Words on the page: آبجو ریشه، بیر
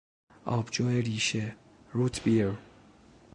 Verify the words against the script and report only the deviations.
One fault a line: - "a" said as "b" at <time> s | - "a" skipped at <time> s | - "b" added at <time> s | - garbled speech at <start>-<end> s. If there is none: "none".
- "روت" added at 1.9 s